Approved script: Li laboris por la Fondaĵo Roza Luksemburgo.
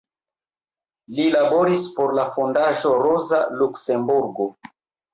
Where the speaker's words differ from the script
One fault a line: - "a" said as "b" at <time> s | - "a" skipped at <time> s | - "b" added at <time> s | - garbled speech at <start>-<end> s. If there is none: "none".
none